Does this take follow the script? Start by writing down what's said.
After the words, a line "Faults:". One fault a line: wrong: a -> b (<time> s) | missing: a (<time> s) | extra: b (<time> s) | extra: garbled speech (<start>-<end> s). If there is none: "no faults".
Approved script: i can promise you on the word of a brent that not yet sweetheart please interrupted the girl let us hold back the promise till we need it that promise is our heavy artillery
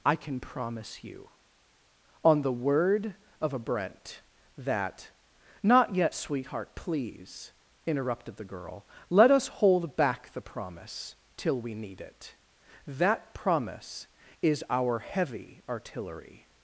i can promise you on the word of a brent that not yet sweetheart please interrupted the girl let us hold back the promise till we need it that promise is our heavy artillery
Faults:
no faults